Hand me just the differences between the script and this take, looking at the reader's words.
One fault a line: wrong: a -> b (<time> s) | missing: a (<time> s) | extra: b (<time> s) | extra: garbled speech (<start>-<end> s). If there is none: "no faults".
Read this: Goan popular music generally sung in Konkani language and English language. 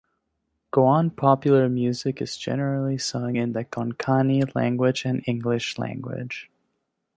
extra: is (2.2 s)
extra: the (3.5 s)